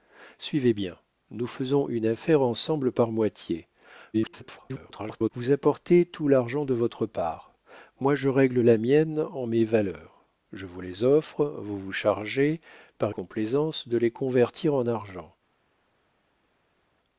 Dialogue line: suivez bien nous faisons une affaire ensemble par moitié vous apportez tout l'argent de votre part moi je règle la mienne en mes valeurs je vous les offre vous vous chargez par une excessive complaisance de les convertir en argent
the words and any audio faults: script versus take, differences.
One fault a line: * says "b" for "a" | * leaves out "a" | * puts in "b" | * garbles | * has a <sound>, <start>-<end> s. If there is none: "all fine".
* garbles
* leaves out "une excessive"